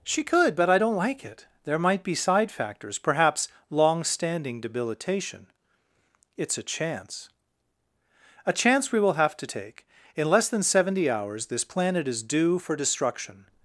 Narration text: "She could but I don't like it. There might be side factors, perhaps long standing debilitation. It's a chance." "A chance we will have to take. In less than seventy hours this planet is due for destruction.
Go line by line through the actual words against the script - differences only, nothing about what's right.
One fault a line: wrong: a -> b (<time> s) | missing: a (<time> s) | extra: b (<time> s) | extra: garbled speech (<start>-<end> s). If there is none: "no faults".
no faults